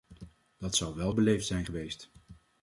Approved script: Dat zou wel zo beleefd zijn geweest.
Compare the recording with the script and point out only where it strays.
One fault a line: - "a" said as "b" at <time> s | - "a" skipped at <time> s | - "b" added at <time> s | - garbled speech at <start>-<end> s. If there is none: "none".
- "zo" skipped at 1.1 s